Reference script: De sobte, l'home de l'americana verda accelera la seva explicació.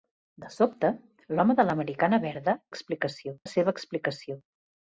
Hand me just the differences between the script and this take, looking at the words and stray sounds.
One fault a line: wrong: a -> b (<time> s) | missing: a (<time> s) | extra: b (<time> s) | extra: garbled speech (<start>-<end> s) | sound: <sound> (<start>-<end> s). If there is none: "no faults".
wrong: accelera -> explicació (2.8 s)